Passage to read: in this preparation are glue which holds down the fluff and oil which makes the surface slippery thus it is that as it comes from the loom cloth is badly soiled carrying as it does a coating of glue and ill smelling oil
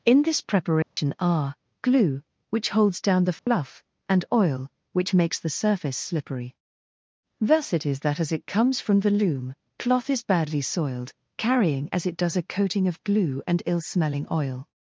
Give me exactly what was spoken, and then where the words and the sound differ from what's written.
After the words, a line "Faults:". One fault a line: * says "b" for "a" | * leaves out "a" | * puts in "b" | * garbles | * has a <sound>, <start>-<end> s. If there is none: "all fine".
in this preparation are glue which holds down the fluff and oil which makes the surface slippery thus it is that as it comes from the loom cloth is badly soiled carrying as it does a coating of glue and ill smelling oil
Faults:
* has a dropout, 0.8-1.0 s
* has a dropout, 3.4-3.5 s